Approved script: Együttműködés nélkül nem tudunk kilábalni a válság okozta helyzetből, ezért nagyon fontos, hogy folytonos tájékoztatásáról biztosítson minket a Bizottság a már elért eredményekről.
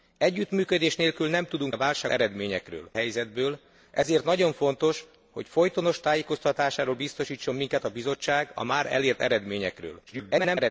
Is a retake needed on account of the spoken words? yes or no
yes